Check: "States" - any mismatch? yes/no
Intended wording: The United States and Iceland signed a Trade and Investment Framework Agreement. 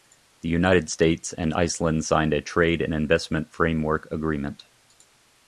no